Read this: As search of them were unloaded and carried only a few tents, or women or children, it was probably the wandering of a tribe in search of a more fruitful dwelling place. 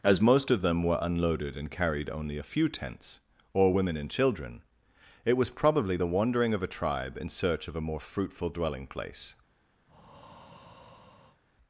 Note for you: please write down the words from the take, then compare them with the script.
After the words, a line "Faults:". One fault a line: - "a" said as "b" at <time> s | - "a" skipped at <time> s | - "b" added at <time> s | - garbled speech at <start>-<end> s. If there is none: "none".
As most of them were unloaded and carried only a few tents, or women and children, it was probably the wandering of a tribe in search of a more fruitful dwelling place.
Faults:
- "search" said as "most" at 0.2 s
- "or" said as "and" at 4.0 s